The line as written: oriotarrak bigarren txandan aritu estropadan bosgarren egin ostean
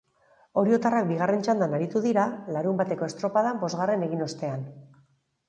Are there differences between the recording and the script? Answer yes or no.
yes